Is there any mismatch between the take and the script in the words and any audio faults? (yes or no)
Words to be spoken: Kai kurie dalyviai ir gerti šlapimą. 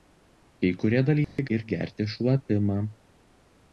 yes